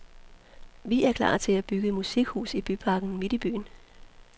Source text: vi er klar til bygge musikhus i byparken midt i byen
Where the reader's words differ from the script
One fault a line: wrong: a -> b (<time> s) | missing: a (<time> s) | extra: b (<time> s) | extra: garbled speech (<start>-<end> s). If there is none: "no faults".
extra: at (1.5 s)